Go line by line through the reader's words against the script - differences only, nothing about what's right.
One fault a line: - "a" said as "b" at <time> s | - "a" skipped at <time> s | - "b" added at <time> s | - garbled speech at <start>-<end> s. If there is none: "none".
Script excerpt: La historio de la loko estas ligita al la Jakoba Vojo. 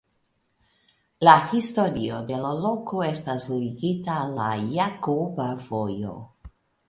none